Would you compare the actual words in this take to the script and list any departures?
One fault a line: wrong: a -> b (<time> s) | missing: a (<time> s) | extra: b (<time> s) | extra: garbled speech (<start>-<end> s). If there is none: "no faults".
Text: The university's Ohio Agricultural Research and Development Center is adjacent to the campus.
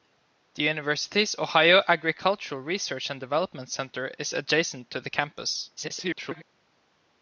extra: garbled speech (5.8-6.4 s)